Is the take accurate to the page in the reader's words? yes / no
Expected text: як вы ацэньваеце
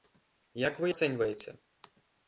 yes